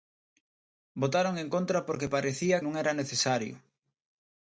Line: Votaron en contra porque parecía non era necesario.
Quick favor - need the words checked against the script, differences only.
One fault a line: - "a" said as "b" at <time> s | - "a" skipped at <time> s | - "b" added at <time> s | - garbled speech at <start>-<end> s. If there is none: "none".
none